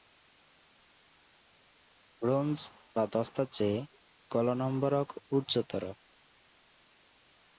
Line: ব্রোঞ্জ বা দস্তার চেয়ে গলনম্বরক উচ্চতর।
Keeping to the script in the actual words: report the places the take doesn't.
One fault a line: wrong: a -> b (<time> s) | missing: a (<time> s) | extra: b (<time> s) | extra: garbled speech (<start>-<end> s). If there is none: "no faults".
no faults